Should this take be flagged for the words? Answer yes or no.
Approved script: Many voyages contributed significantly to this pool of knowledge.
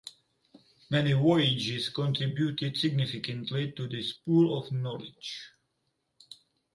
no